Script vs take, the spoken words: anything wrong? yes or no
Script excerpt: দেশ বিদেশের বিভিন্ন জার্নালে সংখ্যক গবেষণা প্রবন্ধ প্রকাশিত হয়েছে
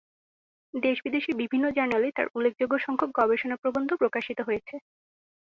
yes